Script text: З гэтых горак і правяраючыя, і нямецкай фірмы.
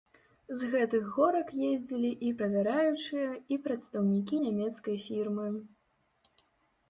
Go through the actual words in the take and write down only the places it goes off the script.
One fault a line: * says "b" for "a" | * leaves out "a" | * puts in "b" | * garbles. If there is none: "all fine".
* puts in "ездзілі"
* puts in "прадстаўнікі"